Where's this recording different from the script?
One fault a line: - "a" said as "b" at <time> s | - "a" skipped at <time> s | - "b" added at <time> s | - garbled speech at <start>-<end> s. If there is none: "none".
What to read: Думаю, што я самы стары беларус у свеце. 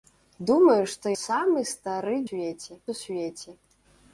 - "я" skipped at 1.1 s
- "беларус" said as "свеце" at 2.3 s